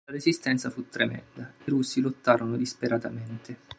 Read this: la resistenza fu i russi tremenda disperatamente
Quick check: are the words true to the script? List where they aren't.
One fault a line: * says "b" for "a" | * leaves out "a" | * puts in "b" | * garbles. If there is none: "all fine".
* puts in "tremenda"
* says "lottarono" for "tremenda"